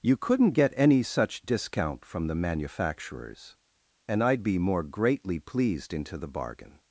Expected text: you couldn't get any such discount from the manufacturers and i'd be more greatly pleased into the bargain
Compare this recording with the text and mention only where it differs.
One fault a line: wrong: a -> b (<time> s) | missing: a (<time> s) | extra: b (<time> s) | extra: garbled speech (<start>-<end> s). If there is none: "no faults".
no faults